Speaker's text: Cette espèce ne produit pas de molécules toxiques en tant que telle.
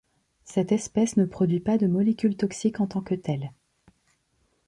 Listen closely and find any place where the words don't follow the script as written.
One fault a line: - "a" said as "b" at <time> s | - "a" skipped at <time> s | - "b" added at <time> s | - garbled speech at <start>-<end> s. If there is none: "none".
none